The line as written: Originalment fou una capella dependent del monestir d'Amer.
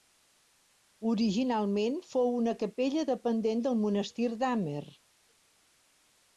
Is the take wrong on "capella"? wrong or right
right